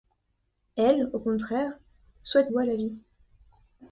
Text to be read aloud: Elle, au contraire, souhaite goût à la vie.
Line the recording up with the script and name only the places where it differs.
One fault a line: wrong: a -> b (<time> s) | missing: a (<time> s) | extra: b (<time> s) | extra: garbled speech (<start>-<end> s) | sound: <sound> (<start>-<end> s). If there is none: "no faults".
no faults